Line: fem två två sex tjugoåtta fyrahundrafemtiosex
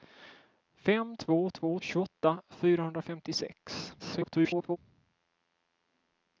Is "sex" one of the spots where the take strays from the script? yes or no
yes